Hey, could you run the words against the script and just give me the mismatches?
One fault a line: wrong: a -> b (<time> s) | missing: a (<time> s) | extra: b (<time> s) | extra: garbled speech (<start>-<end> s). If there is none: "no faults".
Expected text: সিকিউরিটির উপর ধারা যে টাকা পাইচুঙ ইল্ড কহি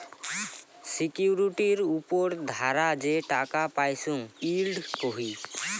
no faults